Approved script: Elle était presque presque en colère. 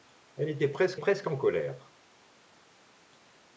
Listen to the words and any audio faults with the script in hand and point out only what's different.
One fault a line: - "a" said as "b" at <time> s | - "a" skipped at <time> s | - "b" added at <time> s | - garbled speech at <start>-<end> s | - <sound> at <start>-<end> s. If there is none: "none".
none